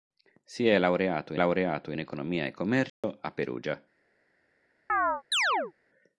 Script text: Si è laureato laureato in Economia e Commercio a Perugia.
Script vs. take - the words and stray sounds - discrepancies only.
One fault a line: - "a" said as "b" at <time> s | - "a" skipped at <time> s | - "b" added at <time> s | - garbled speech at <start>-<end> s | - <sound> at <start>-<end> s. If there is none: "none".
- dropout at 2.9-3.0 s
- chirp at 4.9-5.7 s